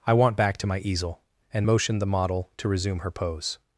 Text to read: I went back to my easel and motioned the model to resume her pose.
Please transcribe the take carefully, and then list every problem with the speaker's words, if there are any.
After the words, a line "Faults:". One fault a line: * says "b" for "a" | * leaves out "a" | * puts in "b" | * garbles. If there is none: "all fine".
I want back to my easel and motioned the model to resume her pose.
Faults:
* says "want" for "went"